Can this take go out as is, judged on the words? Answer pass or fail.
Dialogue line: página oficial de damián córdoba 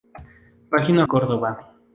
fail